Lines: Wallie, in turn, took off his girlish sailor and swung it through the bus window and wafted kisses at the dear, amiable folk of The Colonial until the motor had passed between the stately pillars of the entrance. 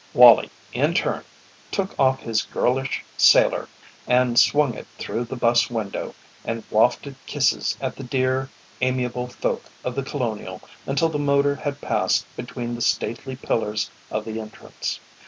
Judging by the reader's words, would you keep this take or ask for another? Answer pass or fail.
pass